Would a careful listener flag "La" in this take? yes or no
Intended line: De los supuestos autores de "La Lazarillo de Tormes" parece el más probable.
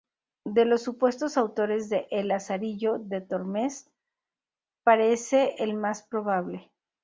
yes